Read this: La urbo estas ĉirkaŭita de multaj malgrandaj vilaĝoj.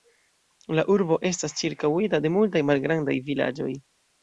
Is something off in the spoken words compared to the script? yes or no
no